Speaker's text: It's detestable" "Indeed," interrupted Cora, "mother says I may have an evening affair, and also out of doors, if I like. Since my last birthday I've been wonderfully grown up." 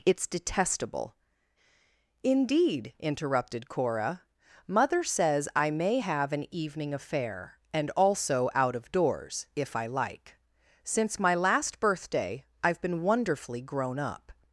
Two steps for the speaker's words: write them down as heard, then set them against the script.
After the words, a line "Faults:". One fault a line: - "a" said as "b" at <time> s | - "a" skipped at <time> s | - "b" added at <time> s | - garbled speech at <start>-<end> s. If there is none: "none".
It's detestable" "Indeed," interrupted Cora, "mother says I may have an evening affair, and also out of doors, if I like. Since my last birthday I've been wonderfully grown up."
Faults:
none